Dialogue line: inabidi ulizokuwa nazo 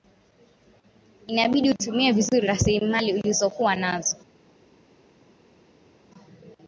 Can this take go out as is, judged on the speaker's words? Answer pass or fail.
fail